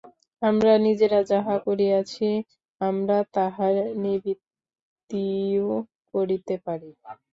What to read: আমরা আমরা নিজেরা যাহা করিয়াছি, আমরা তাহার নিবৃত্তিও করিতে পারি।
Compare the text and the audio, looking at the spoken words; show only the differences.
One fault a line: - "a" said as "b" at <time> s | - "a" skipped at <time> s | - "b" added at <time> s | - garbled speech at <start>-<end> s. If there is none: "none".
- "আমরা" skipped at 0.7 s